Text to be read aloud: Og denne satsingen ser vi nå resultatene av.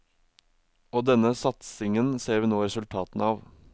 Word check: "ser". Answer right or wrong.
right